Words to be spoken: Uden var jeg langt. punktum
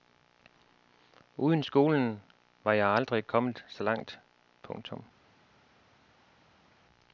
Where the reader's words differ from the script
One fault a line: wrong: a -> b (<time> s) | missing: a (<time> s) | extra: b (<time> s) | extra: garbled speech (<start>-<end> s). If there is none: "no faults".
extra: skolen (1.6 s)
extra: aldrig kommet så (2.9 s)